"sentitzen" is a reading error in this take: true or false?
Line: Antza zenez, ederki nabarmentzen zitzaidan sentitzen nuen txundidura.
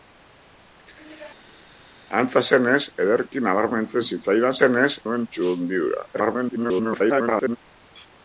true